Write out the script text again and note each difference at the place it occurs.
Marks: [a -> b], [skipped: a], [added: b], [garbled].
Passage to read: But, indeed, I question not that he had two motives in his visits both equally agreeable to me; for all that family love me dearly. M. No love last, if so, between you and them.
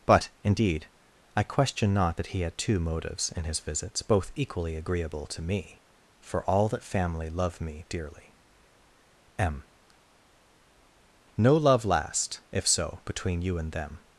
But, indeed, I question not that he had two motives in his visits both equally agreeable to me; for all that family love me dearly. M. No love last, if so, between you and them.